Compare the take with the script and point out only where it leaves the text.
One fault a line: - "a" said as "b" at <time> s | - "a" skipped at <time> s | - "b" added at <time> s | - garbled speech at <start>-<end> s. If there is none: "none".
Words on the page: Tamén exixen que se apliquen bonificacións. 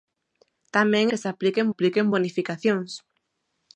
- "exixen" skipped at 1.1 s
- "apliquen" added at 1.7 s